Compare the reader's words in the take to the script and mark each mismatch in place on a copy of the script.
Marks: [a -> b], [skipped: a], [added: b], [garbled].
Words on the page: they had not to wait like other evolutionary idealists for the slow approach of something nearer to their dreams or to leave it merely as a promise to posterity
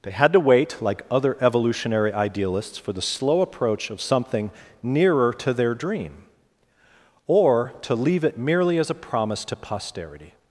they had [skipped: not] to wait like other evolutionary idealists for the slow approach of something nearer to their [dreams -> dream] or to leave it merely as a promise to posterity